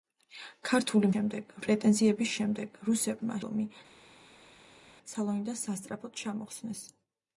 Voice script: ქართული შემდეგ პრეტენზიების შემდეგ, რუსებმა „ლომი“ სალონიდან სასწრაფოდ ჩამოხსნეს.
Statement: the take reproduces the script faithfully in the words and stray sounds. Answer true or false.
true